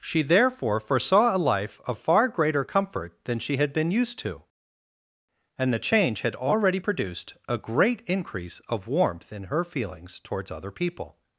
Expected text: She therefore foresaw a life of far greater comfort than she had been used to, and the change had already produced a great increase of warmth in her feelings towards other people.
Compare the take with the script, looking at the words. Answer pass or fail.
pass